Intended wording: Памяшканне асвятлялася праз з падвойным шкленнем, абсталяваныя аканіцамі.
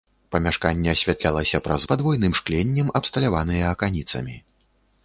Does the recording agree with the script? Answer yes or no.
yes